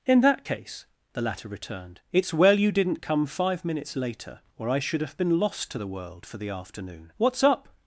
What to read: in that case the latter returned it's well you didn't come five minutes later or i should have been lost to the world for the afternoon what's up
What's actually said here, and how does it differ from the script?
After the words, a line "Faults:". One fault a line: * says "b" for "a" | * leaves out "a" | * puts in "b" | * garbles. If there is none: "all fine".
in that case the latter returned it's well you didn't come five minutes later or i should have been lost to the world for the afternoon what's up
Faults:
all fine